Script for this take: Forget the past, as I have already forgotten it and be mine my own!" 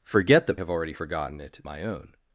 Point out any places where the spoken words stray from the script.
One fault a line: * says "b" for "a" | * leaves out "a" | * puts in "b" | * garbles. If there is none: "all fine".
* leaves out "past as I"
* leaves out "and be mine"